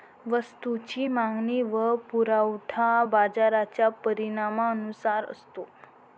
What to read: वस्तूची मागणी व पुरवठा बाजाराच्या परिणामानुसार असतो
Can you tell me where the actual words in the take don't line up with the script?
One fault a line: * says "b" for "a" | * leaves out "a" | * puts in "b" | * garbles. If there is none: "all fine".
all fine